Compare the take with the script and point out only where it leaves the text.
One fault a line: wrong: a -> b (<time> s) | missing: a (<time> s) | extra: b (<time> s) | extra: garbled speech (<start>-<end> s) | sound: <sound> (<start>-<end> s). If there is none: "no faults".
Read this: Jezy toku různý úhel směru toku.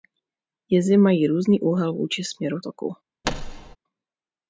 wrong: toku -> mají (1.0 s)
extra: vůči (1.9 s)
sound: thud (3.2-3.8 s)